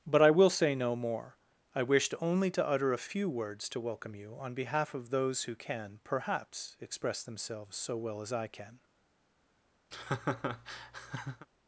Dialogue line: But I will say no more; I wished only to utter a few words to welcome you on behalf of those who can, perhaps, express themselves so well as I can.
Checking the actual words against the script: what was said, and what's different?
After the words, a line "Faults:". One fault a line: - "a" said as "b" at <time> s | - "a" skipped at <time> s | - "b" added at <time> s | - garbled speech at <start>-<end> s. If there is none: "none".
But I will say no more; I wished only to utter a few words to welcome you on behalf of those who can, perhaps, express themselves so well as I can.
Faults:
none